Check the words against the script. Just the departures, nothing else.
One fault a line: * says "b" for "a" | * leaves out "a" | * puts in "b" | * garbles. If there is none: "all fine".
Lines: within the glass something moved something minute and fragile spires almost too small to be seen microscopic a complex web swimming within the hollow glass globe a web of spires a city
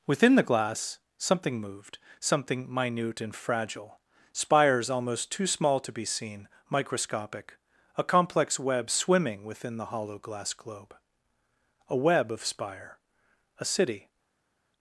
* says "spire" for "spires"